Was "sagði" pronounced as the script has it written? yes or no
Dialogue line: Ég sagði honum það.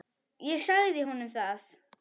yes